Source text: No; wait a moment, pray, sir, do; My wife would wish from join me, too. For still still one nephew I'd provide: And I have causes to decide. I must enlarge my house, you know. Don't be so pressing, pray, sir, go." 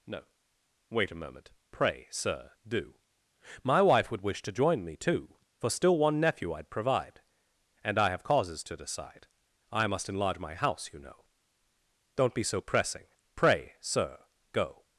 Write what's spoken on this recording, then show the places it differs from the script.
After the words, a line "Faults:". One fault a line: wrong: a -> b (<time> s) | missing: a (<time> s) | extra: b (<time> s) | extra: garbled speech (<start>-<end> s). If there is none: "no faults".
No; wait a moment, pray, sir, do; My wife would wish to join me, too. For still one nephew I'd provide: And I have causes to decide. I must enlarge my house, you know. Don't be so pressing, pray, sir, go."
Faults:
wrong: from -> to (4.4 s)
missing: still (6.0 s)